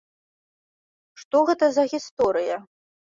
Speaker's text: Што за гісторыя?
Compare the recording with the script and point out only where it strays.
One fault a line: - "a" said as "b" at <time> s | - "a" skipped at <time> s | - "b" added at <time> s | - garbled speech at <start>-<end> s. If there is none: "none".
- "гэта" added at 1.5 s